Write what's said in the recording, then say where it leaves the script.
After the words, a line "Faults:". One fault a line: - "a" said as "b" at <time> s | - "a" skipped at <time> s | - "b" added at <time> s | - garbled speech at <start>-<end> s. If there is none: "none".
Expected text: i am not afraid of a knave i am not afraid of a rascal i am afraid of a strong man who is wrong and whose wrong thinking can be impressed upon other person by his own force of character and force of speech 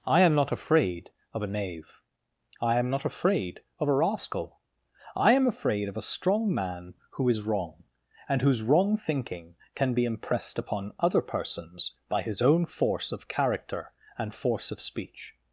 i am not afraid of a knave i am not afraid of a rascal i am afraid of a strong man who is wrong and whose wrong thinking can be impressed upon other persons by his own force of character and force of speech
Faults:
- "person" said as "persons" at 11.2 s